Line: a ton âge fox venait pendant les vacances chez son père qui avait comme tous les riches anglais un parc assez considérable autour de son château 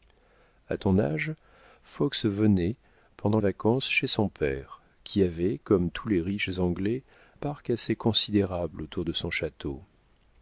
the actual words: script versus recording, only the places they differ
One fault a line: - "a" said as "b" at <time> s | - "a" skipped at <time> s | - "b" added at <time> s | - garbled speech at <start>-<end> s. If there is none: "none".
- "les" skipped at 3.4 s
- "un" skipped at 7.0 s